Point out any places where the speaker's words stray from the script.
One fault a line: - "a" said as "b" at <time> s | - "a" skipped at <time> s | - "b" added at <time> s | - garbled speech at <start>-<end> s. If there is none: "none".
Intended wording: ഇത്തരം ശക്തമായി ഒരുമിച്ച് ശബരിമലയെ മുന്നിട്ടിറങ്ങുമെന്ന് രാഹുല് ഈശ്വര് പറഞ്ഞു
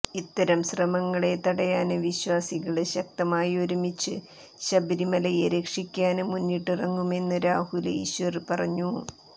- "ശ്രമങ്ങളെ തടയാന് വിശ്വാസികള്" added at 0.7 s
- "രക്ഷിക്കാന്" added at 5.5 s